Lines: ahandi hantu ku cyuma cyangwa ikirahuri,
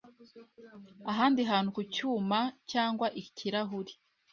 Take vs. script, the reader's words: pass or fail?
pass